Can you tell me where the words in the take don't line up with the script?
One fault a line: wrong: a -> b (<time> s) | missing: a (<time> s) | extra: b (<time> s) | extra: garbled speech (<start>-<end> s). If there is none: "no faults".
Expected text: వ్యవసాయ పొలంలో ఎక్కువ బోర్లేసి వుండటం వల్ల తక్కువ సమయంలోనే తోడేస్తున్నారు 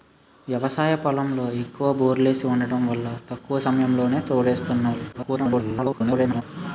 extra: garbled speech (5.1-6.4 s)